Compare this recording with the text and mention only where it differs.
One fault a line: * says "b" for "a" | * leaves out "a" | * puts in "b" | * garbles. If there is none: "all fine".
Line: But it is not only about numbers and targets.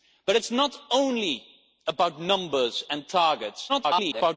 * garbles